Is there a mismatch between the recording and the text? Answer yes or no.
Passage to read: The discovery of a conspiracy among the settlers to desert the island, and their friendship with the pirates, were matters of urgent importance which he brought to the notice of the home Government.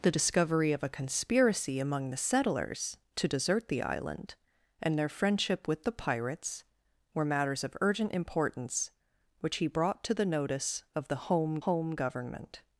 yes